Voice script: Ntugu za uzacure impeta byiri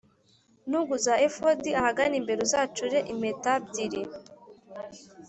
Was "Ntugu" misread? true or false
false